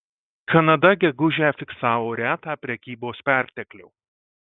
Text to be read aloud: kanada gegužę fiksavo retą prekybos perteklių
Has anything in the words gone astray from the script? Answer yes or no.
no